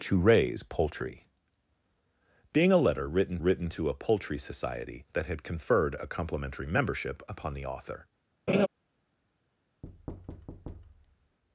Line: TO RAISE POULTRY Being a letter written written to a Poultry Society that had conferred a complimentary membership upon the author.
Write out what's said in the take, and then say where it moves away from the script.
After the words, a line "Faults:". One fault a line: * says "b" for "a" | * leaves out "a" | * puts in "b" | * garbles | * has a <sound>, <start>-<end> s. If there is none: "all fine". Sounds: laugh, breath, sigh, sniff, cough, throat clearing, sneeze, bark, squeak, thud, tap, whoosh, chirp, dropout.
TO RAISE POULTRY Being a letter written written to a Poultry Society that had conferred a complimentary membership upon the author.
Faults:
* has a laugh, 8.5-8.7 s
* has a thud, 9.8-11.4 s